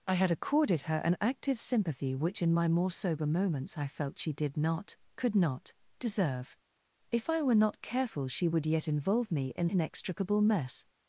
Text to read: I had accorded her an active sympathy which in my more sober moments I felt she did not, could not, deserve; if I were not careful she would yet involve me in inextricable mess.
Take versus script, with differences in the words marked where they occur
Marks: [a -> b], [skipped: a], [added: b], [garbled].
I had accorded her an active sympathy which in my more sober moments I felt she did not, could not, deserve; if I were not careful she would yet involve me in inextricable mess.